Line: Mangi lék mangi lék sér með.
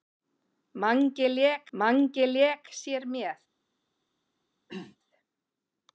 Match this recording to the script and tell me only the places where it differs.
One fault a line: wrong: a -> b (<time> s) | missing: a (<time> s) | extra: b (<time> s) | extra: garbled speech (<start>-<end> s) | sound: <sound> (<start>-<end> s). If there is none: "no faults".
sound: throat clearing (4.7-5.0 s)